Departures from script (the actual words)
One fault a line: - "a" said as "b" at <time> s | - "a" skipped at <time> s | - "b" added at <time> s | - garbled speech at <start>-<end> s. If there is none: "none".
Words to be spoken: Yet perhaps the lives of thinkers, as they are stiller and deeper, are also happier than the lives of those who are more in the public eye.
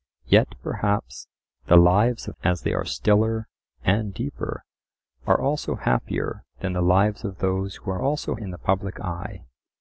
- "thinkers" skipped at 2.4 s
- "more" said as "also" at 8.0 s